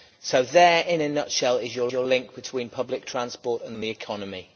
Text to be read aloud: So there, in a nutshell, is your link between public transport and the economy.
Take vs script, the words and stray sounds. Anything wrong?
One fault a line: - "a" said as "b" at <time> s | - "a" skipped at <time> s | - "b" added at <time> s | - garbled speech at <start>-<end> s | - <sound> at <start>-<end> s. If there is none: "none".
- "your" added at 1.9 s
- "and" added at 3.7 s